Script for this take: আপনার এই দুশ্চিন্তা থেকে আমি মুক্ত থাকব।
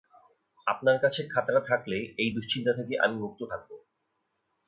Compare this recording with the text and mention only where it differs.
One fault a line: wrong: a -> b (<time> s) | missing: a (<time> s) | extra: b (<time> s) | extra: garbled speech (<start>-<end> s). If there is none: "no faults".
extra: কাছে খাতাটা থাকলে (1.0 s)